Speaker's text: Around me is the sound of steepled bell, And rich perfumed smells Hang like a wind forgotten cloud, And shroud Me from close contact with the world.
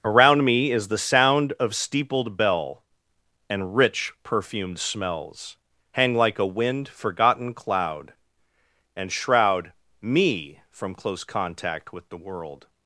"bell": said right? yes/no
yes